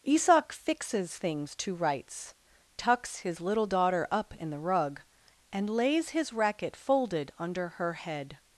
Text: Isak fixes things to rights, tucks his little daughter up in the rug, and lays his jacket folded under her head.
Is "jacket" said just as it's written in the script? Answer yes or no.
no